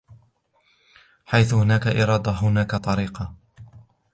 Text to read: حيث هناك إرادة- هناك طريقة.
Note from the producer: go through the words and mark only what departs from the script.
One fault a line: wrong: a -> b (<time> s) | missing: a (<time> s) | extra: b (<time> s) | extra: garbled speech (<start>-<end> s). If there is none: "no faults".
no faults